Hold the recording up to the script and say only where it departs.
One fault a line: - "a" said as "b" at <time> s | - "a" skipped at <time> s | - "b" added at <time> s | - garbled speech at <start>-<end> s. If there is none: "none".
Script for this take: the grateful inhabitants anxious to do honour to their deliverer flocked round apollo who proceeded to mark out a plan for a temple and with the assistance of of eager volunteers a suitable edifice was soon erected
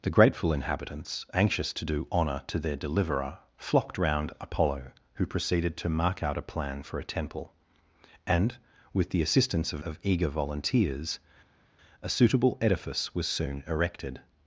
none